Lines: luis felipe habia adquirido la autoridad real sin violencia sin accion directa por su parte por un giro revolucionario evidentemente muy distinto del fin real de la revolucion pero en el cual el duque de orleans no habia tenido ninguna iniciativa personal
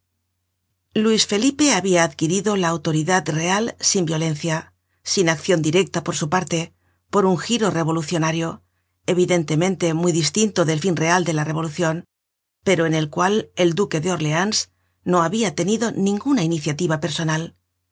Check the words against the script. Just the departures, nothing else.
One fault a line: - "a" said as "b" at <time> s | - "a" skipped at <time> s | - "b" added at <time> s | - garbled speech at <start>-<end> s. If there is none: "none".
none